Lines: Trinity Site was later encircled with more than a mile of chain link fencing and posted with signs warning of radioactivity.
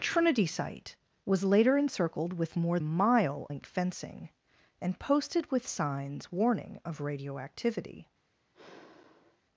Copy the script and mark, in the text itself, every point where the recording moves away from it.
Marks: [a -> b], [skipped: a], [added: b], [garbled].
Trinity Site was later encircled with more [skipped: than] a mile [skipped: of chain] link fencing and posted with signs warning of radioactivity.